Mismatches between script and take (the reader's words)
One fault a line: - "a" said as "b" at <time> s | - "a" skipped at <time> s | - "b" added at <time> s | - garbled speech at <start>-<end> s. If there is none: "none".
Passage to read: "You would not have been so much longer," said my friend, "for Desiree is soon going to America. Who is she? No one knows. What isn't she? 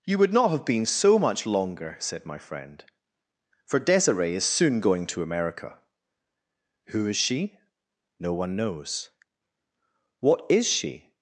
- "isn't" said as "is" at 10.5 s